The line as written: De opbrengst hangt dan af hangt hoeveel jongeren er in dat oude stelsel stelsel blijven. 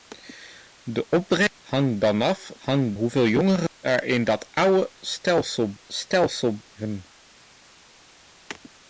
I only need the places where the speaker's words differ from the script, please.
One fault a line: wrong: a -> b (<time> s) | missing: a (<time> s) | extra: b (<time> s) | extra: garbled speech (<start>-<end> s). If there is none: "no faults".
no faults